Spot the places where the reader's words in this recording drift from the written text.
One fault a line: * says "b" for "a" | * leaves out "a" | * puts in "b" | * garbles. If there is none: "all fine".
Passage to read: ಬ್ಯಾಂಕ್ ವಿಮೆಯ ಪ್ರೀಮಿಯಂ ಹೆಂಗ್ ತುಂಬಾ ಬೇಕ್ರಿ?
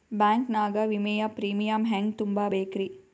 * puts in "ನಾಗ"